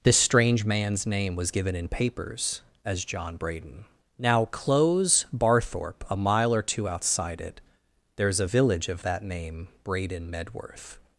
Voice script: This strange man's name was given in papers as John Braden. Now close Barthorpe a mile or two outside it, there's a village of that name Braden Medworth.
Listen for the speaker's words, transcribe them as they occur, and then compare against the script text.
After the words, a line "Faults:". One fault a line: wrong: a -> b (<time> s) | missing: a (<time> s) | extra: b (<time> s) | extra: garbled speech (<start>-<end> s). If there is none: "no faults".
This strange man's name was given in papers as John Braden. Now close Barthorpe a mile or two outside it, there's a village of that name Braden Medworth.
Faults:
no faults